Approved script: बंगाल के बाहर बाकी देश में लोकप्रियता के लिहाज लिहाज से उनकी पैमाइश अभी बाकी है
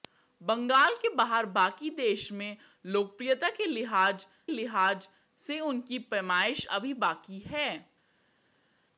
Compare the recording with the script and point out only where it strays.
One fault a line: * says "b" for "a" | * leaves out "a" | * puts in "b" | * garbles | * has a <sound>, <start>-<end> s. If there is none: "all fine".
all fine